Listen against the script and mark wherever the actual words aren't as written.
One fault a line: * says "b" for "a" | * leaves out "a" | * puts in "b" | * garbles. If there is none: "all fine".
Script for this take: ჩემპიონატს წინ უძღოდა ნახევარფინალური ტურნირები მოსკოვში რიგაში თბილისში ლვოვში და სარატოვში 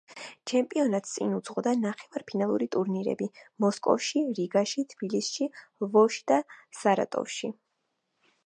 all fine